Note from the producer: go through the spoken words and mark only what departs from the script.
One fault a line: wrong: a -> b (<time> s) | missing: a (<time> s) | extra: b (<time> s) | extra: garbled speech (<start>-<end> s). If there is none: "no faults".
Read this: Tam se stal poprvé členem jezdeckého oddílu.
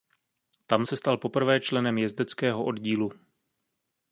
no faults